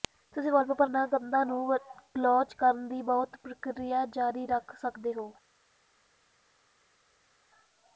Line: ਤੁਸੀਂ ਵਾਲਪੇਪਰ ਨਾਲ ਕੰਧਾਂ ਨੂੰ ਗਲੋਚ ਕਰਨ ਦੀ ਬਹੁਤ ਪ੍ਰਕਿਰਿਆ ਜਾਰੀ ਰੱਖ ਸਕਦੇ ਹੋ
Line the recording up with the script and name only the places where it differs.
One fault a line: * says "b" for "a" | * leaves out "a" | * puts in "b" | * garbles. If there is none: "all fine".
all fine